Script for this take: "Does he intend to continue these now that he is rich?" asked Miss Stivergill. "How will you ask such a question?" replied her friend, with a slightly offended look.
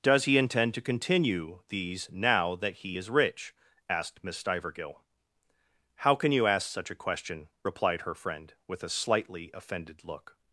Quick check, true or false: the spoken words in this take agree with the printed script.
false